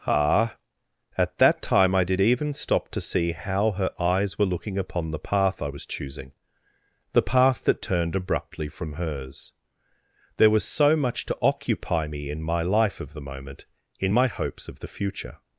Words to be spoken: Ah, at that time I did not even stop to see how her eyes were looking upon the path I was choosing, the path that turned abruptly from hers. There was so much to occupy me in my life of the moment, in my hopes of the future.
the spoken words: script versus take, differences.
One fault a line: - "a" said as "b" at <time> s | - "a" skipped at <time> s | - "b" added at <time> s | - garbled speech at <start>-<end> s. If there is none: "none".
- "not" skipped at 2.2 s